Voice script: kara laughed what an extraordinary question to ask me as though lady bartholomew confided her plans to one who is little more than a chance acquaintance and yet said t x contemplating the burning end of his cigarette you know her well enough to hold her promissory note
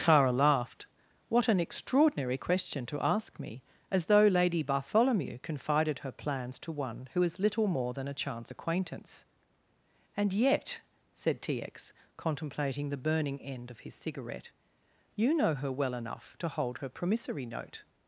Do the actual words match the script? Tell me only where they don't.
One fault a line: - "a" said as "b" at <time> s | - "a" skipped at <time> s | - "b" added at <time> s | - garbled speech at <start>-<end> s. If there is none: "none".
none